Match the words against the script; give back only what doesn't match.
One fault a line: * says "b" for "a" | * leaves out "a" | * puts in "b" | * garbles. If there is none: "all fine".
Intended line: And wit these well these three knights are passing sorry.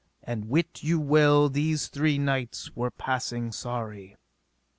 * says "you" for "these"
* says "were" for "are"